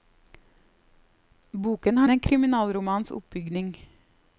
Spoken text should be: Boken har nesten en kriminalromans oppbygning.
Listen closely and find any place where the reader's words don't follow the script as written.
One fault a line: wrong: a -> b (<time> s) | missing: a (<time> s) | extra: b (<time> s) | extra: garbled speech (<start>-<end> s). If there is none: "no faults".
missing: nesten (2.1 s)